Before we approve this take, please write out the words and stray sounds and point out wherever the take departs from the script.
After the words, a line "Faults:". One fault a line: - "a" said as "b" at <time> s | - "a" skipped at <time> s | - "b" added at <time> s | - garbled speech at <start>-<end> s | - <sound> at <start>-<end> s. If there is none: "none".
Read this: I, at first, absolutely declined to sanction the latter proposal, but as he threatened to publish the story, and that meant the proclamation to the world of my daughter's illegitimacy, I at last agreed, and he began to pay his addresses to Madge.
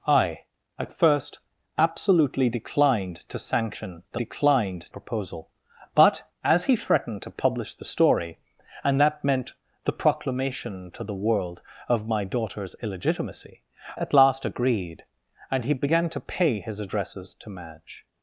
I, at first, absolutely declined to sanction the declined proposal, but as he threatened to publish the story, and that meant the proclamation to the world of my daughter's illegitimacy, at last agreed, and he began to pay his addresses to Madge.
Faults:
- "latter" said as "declined" at 4.1 s
- "I" skipped at 13.6 s